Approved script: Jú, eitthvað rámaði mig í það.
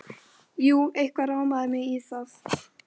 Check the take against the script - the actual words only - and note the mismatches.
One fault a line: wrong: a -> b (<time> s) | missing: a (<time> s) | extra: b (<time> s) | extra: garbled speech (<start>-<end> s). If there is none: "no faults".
no faults